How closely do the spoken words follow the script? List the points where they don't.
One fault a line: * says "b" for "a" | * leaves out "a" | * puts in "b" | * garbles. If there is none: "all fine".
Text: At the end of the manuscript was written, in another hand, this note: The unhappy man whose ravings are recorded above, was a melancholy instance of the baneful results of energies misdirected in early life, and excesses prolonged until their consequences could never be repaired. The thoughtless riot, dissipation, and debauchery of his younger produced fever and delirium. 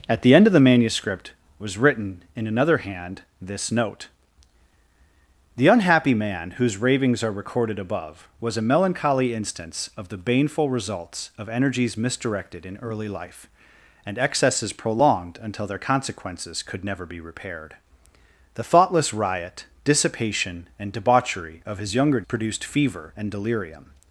all fine